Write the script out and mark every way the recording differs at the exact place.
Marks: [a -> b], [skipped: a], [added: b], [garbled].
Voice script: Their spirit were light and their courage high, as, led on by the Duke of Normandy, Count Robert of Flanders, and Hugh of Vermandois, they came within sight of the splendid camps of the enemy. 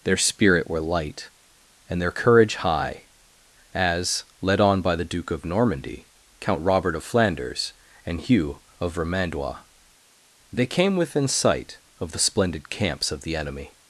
Their spirit were light and their courage high, as, led on by the Duke of Normandy, Count Robert of Flanders, and Hugh of Vermandois, they came within sight of the splendid camps of the enemy.